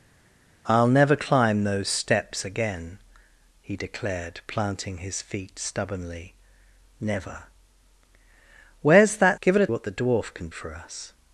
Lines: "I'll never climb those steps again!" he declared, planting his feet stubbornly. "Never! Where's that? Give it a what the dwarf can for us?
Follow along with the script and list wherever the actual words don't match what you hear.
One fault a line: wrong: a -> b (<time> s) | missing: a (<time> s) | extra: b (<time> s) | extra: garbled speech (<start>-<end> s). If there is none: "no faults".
no faults